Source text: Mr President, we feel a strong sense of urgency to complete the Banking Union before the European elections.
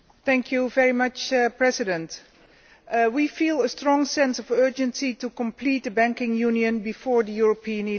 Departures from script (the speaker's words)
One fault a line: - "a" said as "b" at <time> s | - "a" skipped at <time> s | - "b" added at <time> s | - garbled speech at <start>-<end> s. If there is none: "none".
none